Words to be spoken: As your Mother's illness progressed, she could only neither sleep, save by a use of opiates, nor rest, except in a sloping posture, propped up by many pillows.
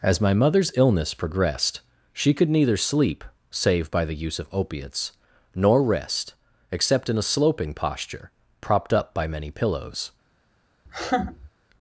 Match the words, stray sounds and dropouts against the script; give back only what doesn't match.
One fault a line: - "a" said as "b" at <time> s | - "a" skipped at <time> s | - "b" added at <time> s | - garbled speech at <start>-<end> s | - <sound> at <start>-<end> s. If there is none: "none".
- "your" said as "my" at 0.2 s
- "only" skipped at 2.5 s
- "a" said as "the" at 4.0 s
- laugh at 10.9-11.5 s